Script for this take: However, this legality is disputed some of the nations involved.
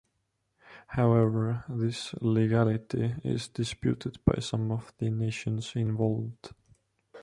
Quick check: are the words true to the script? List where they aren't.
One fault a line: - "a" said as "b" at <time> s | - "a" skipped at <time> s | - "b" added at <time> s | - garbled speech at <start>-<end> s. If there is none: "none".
- "by" added at 4.2 s